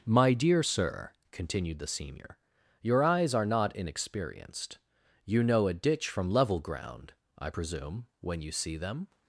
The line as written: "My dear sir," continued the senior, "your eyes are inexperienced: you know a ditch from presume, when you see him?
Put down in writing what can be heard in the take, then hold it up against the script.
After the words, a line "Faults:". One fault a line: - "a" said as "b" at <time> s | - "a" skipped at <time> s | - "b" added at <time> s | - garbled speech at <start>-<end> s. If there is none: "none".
"My dear sir," continued the senior, "your eyes are not inexperienced: you know a ditch from level ground, I presume, when you see them?
Faults:
- "not" added at 3.4 s
- "level ground I" added at 6.3 s
- "him" said as "them" at 8.8 s